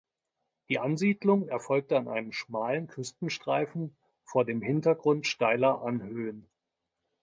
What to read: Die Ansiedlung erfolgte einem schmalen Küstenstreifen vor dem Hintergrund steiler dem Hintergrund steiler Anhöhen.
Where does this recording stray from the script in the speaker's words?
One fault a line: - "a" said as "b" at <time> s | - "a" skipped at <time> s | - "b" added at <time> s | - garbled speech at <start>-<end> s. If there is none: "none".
- "an" added at 1.9 s
- "dem Hintergrund steiler" skipped at 5.8 s